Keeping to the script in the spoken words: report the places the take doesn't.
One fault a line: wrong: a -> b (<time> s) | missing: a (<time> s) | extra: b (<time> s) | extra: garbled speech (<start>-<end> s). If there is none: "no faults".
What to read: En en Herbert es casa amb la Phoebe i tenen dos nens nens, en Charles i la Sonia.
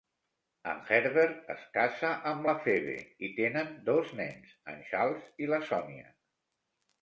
missing: en (0.8 s)
missing: nens (4.5 s)